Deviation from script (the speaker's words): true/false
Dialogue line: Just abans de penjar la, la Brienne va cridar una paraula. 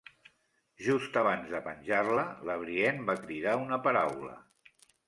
false